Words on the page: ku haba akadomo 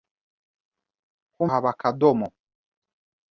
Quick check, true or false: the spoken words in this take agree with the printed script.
true